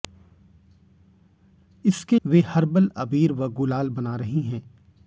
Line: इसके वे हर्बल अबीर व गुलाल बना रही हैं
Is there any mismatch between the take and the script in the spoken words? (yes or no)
no